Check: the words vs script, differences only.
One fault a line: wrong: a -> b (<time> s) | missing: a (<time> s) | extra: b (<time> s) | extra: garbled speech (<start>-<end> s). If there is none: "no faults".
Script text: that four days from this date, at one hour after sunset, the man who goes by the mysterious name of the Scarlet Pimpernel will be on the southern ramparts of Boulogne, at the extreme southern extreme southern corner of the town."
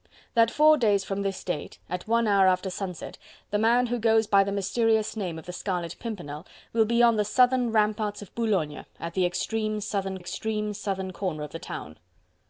no faults